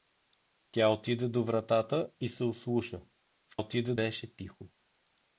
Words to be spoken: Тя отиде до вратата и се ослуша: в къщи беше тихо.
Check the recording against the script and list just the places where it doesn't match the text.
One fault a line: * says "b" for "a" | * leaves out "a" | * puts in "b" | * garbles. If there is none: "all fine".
* says "отиде" for "къщи"